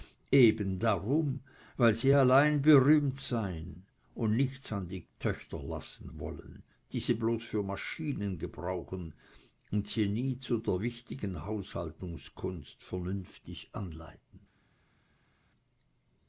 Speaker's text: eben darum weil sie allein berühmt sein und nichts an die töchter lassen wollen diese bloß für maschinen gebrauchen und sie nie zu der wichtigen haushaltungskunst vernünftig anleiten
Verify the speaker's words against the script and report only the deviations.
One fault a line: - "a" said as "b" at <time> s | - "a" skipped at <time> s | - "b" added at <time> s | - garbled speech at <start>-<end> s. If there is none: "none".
none